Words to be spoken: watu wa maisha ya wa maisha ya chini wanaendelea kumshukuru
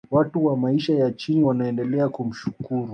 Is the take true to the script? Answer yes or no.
no